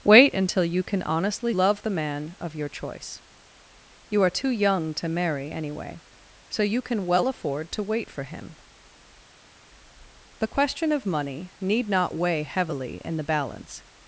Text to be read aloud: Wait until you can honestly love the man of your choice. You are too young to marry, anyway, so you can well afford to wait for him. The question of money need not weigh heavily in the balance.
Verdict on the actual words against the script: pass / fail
pass